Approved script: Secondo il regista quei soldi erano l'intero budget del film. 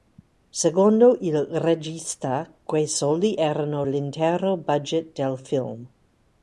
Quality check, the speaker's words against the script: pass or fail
pass